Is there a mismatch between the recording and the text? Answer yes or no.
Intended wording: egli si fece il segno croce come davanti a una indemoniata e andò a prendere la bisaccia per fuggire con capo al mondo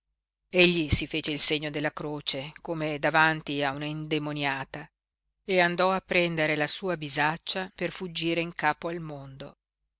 yes